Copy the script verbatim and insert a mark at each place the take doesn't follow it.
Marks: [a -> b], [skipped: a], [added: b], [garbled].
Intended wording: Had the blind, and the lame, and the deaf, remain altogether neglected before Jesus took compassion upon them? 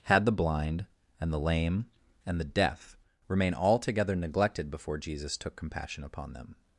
Had the blind, and the lame, and the deaf, remain altogether neglected before Jesus took compassion upon them?